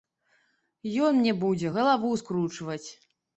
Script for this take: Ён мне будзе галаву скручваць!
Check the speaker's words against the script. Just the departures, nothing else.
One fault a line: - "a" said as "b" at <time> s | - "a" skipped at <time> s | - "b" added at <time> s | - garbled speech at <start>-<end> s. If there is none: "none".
none